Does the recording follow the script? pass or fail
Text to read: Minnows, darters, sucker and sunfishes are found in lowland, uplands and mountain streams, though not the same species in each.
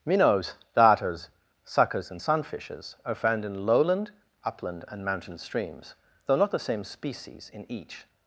fail